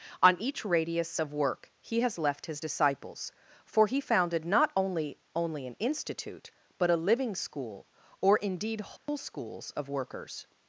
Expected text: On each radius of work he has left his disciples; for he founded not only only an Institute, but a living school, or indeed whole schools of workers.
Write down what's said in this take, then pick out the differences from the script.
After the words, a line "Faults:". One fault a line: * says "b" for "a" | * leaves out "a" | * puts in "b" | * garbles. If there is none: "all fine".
On each radius of work he has left his disciples; for he founded not only only an Institute, but a living school, or indeed whole schools of workers.
Faults:
all fine